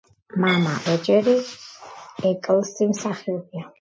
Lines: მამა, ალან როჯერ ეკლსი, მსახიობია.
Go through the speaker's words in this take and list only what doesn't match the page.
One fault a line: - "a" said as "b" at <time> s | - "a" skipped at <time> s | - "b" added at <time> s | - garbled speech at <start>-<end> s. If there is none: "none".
- "ალან" skipped at 0.7 s